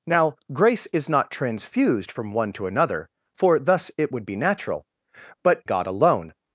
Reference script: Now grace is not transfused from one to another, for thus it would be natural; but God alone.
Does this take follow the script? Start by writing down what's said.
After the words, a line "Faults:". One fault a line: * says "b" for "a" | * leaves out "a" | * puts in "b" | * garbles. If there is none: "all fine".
Now grace is not transfused from one to another, for thus it would be natural; but God alone.
Faults:
all fine